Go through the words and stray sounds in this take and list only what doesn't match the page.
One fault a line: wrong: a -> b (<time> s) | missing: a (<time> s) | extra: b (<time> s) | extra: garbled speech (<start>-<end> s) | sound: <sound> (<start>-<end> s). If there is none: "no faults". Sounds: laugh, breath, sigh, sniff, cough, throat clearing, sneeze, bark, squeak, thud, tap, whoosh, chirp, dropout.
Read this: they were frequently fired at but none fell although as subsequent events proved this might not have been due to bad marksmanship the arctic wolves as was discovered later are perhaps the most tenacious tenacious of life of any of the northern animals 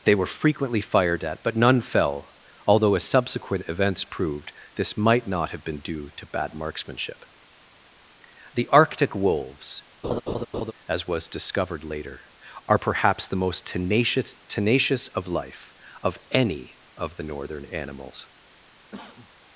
sound: laugh (10.0-10.7 s)
sound: cough (18.9-19.3 s)